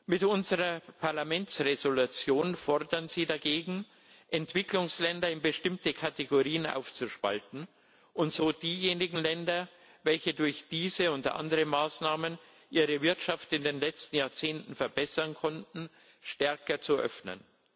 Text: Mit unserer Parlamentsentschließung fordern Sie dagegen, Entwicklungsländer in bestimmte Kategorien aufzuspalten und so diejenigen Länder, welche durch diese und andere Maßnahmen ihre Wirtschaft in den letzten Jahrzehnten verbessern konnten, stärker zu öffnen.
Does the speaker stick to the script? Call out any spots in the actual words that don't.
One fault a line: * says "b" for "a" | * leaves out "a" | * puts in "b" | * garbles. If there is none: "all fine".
all fine